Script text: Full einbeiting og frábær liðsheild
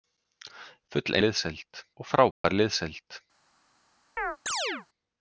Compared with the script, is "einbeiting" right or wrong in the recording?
wrong